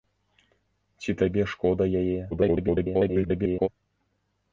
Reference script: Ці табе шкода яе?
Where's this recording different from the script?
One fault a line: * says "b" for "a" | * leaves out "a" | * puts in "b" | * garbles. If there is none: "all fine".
* garbles